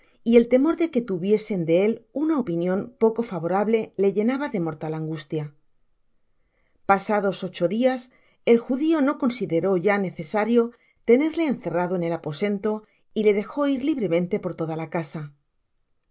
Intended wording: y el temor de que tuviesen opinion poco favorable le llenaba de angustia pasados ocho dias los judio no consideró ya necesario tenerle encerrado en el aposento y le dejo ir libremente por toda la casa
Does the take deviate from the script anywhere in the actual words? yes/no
yes